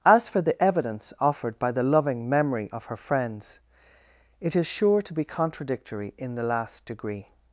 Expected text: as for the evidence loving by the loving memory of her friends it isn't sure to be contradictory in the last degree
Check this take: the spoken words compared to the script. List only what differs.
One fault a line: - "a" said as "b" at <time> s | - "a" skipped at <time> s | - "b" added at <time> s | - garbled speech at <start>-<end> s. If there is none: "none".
- "loving" said as "offered" at 1.2 s
- "isn't" said as "is" at 4.5 s